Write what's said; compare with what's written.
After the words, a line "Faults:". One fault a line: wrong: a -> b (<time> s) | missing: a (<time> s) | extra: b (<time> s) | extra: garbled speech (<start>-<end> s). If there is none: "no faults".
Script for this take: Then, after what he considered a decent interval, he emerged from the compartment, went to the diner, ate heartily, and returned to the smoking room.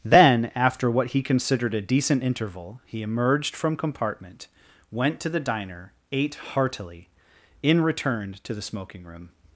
Then, after what he considered a decent interval, he emerged from compartment, went to the diner, ate heartily, in returned to the smoking room.
Faults:
missing: the (3.8 s)
wrong: and -> in (7.6 s)